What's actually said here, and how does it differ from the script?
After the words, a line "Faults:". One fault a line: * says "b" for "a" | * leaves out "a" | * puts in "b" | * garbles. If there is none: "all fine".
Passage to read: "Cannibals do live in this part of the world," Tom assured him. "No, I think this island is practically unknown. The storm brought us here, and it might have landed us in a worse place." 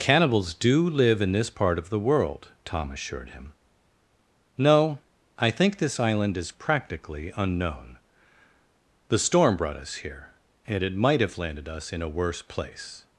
"Cannibals do live in this part of the world," Tom assured him. "No, I think this island is practically unknown. The storm brought us here, and it might have landed us in a worse place."
Faults:
all fine